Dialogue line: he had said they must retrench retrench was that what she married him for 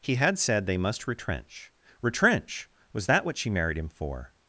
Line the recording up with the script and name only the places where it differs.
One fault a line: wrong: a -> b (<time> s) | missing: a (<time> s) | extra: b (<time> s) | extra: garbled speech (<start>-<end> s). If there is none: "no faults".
no faults